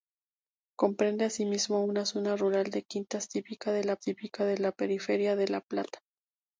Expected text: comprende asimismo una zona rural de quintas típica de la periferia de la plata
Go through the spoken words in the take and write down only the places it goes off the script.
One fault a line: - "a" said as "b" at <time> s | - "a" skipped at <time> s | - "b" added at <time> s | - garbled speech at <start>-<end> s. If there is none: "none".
- "típica de la" added at 4.0 s